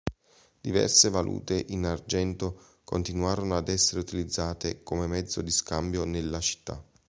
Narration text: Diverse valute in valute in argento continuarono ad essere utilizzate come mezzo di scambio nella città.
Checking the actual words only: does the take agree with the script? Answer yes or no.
no